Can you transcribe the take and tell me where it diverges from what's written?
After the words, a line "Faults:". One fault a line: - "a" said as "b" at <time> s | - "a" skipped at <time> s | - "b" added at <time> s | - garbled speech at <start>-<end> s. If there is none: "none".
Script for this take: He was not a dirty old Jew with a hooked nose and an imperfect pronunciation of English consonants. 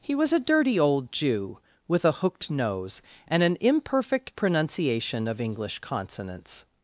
He was a dirty old Jew with a hooked nose and an imperfect pronunciation of English consonants.
Faults:
- "not" skipped at 0.3 s